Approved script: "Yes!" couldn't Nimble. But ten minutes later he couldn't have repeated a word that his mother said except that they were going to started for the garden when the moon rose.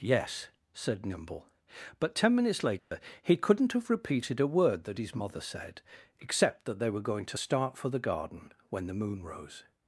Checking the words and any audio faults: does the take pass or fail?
fail